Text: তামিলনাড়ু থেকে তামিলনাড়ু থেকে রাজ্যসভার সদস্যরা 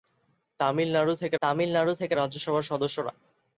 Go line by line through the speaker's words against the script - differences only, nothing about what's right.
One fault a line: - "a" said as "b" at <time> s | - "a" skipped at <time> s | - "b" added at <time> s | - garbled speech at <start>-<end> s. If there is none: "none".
none